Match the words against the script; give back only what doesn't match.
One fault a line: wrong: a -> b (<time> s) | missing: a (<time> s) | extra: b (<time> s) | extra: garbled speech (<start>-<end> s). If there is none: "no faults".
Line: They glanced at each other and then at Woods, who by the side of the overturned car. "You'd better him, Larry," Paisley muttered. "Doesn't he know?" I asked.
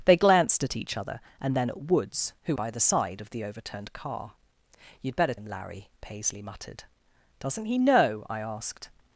no faults